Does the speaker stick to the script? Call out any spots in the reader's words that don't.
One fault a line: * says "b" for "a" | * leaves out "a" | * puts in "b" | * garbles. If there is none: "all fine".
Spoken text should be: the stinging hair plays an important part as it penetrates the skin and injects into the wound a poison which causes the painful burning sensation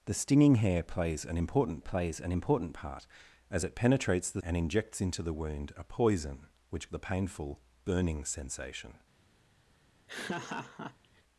* puts in "plays an important"
* leaves out "skin"
* leaves out "causes"